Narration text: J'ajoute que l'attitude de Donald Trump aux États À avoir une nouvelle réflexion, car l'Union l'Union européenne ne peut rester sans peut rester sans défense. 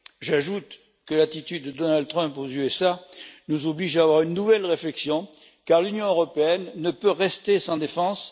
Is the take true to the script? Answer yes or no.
no